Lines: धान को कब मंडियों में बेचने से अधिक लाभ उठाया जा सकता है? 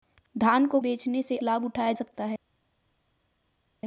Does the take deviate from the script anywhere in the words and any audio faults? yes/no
yes